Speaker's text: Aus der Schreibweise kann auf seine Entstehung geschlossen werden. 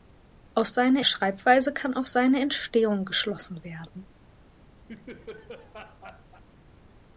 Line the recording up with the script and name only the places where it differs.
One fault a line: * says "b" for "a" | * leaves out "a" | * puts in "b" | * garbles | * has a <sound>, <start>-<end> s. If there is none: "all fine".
* says "seine" for "der"
* has a laugh, 4.9-6.4 s